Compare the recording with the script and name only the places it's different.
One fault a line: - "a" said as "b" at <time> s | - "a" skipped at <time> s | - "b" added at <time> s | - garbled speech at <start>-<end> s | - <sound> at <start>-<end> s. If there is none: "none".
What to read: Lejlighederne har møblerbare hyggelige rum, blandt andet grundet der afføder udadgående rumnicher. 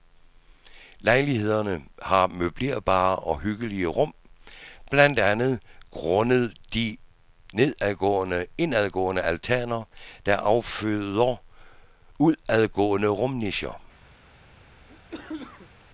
- "og" added at 3.1 s
- "de indadgående altaner" added at 6.7 s
- cough at 14.9-15.8 s